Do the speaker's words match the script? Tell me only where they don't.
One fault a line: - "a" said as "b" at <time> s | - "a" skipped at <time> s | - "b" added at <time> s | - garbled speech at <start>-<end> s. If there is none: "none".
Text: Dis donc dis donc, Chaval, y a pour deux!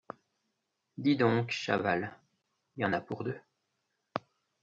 - "dis donc" skipped at 1.5 s
- "en" added at 2.8 s